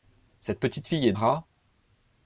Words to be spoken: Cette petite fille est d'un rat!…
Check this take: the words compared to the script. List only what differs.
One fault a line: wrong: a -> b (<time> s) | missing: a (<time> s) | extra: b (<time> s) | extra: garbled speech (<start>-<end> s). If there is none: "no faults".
missing: d'un (1.1 s)